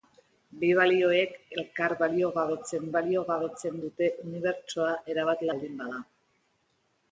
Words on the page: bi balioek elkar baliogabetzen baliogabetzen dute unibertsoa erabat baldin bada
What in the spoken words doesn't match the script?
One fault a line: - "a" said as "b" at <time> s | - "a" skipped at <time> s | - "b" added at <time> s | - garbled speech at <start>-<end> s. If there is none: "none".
none